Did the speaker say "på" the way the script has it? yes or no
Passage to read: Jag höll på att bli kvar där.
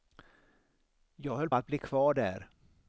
no